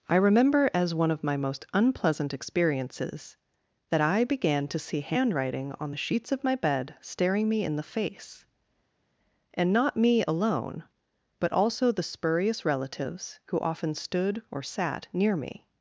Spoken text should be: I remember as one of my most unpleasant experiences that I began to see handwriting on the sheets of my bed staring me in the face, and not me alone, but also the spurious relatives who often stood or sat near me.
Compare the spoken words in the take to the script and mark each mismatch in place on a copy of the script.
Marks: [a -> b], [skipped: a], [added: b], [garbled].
I remember as one of my most unpleasant experiences that I began to see handwriting on the sheets of my bed staring me in the face, and not me alone, but also the spurious relatives who often stood or sat near me.